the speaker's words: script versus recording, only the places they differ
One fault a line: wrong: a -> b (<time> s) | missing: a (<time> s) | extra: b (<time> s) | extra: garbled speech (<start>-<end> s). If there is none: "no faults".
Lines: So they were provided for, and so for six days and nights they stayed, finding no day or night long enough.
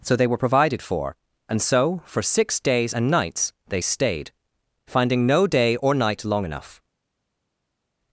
no faults